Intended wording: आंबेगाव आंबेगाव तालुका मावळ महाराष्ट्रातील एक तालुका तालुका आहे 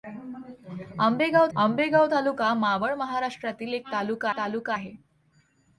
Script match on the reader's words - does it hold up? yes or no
yes